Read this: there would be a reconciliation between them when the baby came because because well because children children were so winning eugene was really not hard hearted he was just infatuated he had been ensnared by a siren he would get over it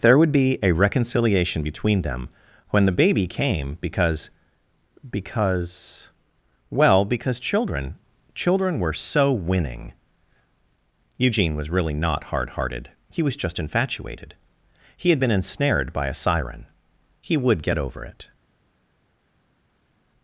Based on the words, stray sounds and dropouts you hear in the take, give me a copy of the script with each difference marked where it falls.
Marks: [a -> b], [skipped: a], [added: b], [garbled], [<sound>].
there would be a reconciliation between them when the baby came because because well because children children were so winning eugene was really not hard hearted he was just infatuated he had been ensnared by a siren he would get over it